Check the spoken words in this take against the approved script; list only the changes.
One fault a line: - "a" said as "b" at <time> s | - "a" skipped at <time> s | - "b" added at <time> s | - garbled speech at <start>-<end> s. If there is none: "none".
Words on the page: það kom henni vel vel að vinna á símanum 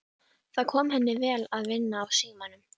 - "vel" skipped at 1.4 s